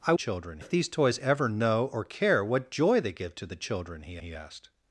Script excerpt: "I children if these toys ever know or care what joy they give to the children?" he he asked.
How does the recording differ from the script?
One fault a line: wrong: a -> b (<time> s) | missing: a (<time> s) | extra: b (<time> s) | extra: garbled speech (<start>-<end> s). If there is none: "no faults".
no faults